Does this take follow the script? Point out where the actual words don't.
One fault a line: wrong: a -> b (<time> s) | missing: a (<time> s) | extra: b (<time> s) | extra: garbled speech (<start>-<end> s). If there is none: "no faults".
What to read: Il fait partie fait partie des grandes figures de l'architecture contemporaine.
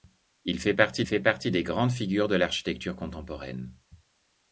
no faults